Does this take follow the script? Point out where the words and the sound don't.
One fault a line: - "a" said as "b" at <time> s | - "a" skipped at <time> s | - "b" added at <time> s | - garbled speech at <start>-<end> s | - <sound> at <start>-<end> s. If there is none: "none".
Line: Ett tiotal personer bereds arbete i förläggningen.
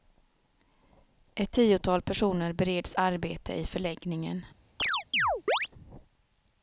- chirp at 4.8-5.7 s